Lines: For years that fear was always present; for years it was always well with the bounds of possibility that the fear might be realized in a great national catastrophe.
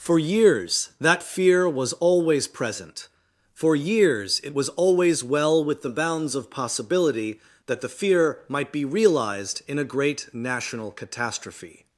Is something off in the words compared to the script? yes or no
no